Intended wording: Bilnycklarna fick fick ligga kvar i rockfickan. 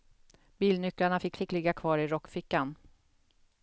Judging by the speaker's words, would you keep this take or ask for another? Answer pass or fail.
pass